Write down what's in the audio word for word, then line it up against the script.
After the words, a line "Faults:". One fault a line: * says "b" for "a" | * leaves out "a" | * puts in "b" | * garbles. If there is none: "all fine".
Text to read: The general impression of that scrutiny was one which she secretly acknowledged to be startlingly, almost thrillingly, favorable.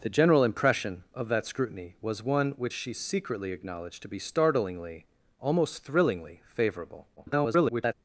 The general impression of that scrutiny was one which she secretly acknowledged to be startlingly, almost thrillingly, favorable. [garbled]
Faults:
* garbles